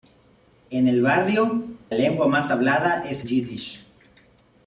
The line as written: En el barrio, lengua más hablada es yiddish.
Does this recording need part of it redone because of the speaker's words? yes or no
no